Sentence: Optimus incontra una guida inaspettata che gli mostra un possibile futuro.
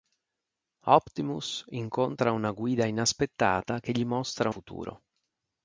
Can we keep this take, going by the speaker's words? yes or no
no